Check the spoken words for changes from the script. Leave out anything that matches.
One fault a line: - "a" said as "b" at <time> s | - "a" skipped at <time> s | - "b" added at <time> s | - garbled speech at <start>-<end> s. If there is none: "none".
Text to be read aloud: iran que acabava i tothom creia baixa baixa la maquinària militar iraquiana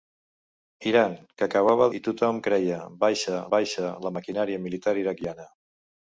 none